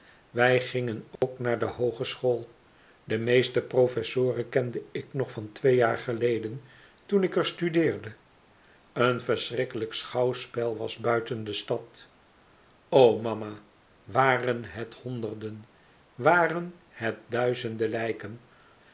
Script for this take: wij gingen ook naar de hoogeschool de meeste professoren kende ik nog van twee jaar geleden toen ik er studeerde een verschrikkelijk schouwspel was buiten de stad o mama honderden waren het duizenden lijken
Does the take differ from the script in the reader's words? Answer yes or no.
yes